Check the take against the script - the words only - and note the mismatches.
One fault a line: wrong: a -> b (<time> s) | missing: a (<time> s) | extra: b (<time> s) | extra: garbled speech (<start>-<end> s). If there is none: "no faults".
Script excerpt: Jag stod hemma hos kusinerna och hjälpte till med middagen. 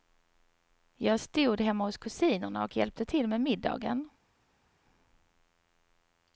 no faults